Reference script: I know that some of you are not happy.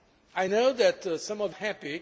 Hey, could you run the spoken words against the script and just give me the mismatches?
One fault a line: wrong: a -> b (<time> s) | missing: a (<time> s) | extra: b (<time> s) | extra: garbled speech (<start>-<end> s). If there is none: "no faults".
missing: you are not (1.5 s)